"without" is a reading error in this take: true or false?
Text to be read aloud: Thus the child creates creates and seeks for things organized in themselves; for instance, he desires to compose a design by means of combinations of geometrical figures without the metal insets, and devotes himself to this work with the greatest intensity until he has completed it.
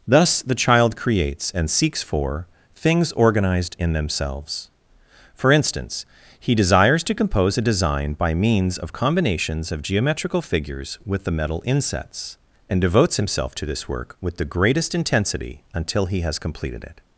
true